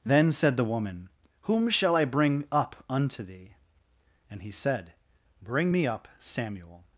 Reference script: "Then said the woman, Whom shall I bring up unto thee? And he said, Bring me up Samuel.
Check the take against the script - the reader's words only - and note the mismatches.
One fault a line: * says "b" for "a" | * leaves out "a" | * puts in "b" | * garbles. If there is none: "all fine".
all fine